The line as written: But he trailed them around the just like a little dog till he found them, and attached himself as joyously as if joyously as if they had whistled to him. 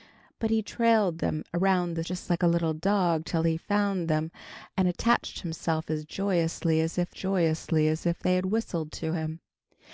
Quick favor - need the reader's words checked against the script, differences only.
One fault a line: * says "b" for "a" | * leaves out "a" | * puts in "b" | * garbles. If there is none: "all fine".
all fine